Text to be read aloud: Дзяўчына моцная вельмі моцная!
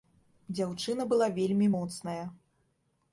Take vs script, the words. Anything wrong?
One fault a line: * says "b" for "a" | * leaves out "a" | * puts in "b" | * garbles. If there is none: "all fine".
* says "была" for "моцная"